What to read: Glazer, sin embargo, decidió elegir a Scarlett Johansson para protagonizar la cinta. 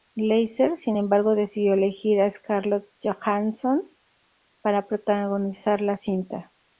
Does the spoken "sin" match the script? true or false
true